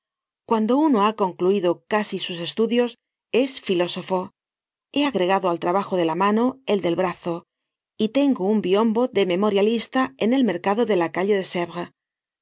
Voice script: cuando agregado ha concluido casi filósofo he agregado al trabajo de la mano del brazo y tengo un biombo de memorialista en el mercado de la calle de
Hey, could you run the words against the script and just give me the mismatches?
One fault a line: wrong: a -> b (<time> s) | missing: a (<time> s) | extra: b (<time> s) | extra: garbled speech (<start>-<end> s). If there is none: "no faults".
wrong: agregado -> uno (0.8 s)
extra: sus estudios es (2.2 s)
extra: el (6.7 s)